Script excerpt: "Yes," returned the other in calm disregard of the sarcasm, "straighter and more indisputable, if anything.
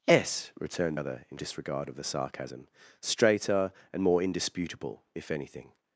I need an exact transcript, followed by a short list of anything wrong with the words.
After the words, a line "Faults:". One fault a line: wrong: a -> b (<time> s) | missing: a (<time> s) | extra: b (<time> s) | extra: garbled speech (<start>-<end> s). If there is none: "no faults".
"Yes," returned other in disregard of the sarcasm, "straighter and more indisputable, if anything.
Faults:
missing: the (1.0 s)
missing: calm (1.4 s)